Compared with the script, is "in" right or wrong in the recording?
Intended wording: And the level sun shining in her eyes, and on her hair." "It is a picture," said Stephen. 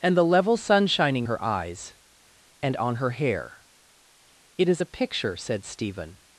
wrong